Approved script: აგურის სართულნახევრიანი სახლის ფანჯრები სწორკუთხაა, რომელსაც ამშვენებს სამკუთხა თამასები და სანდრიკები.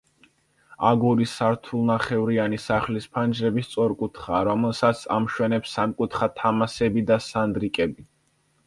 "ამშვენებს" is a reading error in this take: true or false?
false